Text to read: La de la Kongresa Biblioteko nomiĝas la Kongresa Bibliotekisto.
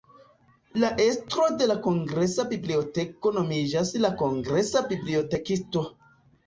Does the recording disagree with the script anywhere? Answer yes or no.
yes